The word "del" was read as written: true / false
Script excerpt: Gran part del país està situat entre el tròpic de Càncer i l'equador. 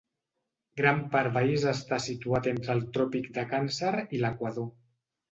false